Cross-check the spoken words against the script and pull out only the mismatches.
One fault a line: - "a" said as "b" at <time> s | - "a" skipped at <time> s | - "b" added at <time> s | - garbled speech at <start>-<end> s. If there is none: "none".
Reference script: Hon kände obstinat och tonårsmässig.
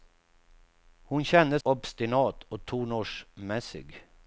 none